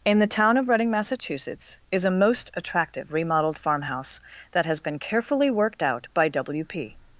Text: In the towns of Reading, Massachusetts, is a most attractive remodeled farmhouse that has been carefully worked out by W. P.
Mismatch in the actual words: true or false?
true